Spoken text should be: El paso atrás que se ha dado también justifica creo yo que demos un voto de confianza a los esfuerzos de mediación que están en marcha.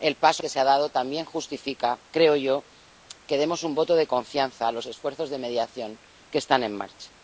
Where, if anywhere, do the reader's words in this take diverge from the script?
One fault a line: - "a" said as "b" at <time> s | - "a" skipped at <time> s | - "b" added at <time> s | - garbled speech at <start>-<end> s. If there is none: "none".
- "atrás" skipped at 0.4 s